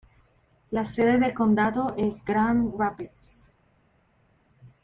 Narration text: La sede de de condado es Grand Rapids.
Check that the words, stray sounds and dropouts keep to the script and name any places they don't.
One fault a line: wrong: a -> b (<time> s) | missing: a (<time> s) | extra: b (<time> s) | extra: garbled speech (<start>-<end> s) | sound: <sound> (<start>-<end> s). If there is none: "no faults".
missing: de (1.3 s)